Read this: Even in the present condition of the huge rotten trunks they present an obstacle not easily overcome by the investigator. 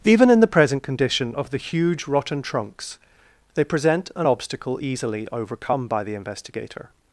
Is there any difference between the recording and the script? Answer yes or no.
yes